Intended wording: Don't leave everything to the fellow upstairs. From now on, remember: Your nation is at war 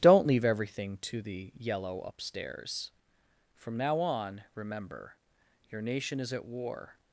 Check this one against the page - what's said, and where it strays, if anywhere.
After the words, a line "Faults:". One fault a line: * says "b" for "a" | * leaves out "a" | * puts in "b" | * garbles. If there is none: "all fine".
Don't leave everything to the yellow upstairs. From now on, remember: Your nation is at war
Faults:
* says "yellow" for "fellow"